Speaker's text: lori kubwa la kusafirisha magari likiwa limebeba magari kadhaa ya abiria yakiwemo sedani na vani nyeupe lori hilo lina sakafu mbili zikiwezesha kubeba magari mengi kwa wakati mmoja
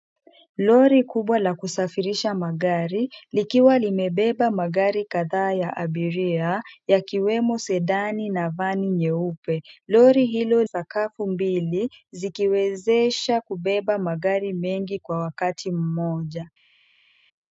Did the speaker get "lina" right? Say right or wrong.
wrong